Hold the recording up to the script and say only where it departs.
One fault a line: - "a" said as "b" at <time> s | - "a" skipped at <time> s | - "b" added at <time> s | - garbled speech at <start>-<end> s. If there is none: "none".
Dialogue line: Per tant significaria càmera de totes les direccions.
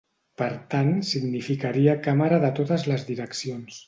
none